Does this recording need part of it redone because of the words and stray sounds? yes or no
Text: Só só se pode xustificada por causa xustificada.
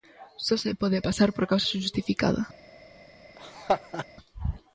yes